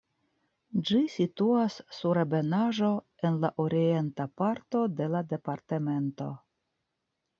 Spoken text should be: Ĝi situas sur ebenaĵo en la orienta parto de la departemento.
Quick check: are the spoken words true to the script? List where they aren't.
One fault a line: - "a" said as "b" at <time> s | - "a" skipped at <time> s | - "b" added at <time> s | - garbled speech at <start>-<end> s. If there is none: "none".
none